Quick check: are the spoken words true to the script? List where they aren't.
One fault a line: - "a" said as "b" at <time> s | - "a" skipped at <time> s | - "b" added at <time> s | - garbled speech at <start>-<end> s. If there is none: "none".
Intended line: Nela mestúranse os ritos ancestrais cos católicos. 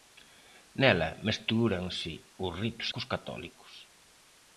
- "ancestrais" skipped at 2.9 s